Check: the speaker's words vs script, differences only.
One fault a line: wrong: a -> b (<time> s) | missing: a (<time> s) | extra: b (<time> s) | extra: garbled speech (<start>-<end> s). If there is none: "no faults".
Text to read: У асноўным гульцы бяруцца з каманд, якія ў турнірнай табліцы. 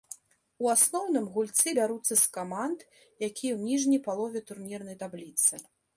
extra: ніжняй палове (3.7 s)